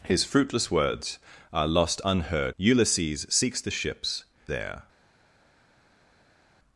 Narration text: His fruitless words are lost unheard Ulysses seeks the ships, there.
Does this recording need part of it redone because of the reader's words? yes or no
no